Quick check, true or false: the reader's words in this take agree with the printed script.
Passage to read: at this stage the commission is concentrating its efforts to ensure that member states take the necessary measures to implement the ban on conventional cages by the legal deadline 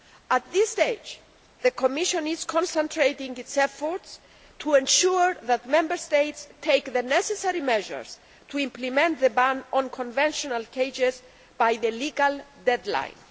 true